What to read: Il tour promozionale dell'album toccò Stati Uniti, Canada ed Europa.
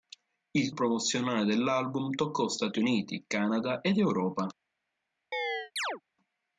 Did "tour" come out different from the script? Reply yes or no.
yes